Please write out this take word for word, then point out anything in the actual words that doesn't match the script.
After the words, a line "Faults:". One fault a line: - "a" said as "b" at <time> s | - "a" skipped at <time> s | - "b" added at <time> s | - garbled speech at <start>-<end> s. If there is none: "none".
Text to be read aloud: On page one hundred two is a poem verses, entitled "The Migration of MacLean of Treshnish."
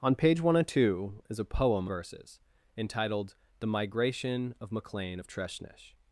On page one hundred two is a poem verses, entitled "The Migration of MacLean of Treshnish."
Faults:
none